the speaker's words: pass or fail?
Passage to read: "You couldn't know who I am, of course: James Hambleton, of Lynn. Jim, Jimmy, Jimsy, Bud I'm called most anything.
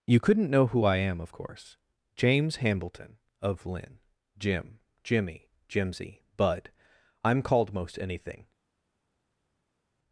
pass